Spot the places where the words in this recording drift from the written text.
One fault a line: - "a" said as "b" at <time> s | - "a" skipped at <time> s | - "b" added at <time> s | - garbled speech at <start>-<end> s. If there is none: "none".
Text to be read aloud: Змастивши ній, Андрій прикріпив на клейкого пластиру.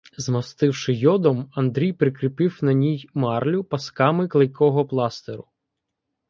- "ній" said as "йодом" at 0.9 s
- "ній марлю пасками" added at 2.7 s